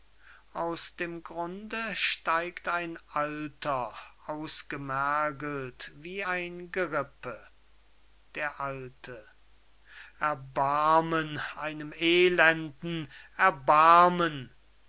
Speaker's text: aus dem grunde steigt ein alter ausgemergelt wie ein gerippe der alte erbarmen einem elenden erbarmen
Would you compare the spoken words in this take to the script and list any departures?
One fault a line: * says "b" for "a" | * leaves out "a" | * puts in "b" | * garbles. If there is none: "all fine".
all fine